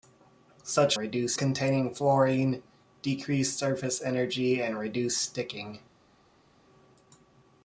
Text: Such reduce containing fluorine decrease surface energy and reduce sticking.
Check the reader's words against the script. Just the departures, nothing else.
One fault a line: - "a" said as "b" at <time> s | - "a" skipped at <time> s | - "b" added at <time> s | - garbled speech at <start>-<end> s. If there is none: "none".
none